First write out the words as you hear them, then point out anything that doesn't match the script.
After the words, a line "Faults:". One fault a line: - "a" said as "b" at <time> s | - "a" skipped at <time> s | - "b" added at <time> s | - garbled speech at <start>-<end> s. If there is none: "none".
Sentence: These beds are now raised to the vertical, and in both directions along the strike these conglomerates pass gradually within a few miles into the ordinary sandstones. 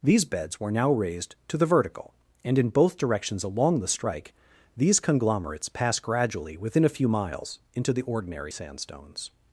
These beds were now raised to the vertical, and in both directions along the strike these conglomerates pass gradually within a few miles into the ordinary sandstones.
Faults:
- "are" said as "were" at 0.6 s